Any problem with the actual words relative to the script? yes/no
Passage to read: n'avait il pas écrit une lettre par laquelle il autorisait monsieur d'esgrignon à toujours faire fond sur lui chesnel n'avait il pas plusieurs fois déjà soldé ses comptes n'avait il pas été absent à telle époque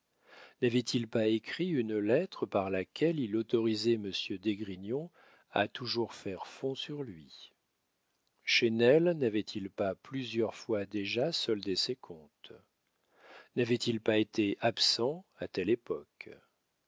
no